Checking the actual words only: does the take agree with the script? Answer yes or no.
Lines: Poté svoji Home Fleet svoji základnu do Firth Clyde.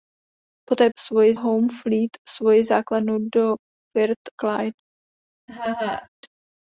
yes